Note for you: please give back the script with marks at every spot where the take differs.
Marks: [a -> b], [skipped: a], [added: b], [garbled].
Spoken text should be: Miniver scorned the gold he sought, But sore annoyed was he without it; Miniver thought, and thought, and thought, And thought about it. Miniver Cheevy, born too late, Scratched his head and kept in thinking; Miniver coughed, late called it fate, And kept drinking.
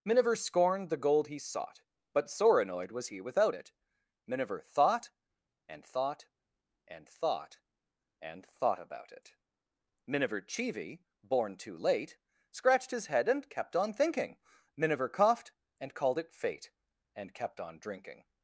Miniver scorned the gold he sought, But sore annoyed was he without it; Miniver thought, and thought, and thought, And thought about it. Miniver Cheevy, born too late, Scratched his head and kept [in -> on] thinking; Miniver coughed, [late -> and] called it fate, And kept [added: on] drinking.